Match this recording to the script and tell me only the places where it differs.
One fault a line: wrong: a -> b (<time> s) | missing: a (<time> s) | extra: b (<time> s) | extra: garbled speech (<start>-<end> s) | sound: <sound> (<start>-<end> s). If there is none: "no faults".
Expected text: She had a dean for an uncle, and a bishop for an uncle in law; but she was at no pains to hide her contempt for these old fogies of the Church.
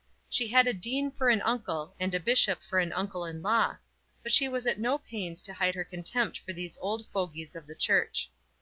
no faults